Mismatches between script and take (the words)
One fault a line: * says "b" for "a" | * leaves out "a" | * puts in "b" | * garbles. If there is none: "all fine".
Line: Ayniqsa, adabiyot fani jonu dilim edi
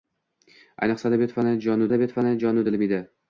* puts in "adabiyot fani jonu"